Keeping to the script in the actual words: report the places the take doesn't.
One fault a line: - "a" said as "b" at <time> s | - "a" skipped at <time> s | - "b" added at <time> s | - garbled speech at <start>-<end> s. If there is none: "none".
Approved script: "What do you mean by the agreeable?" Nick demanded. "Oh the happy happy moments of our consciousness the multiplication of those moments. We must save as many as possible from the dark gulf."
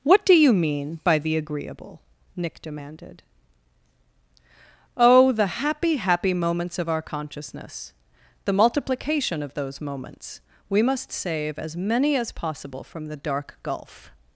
none